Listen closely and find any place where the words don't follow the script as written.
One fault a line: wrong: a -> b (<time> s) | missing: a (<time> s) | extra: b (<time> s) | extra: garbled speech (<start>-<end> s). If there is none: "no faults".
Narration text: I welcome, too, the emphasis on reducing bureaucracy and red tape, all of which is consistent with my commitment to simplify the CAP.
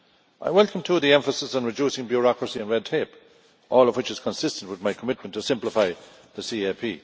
no faults